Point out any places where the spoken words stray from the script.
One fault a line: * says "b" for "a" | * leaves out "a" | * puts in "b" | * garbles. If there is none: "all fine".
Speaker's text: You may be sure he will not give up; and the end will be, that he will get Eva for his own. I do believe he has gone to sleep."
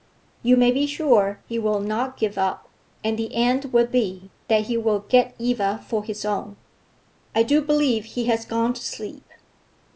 all fine